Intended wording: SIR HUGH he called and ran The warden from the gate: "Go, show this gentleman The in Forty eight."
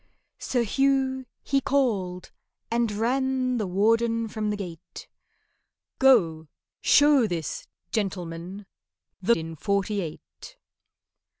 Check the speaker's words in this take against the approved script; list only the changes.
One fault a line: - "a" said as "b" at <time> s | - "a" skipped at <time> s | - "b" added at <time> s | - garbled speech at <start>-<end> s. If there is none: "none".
none